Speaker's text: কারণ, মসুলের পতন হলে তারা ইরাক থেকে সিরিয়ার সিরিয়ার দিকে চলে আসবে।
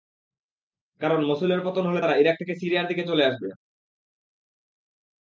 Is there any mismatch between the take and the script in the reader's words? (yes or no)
yes